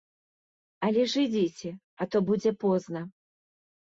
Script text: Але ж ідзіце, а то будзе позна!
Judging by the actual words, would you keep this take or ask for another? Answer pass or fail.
pass